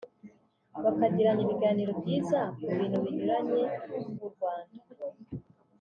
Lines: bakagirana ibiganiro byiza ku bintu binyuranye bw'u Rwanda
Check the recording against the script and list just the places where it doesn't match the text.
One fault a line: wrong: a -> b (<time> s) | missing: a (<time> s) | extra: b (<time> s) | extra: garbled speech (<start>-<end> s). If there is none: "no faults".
no faults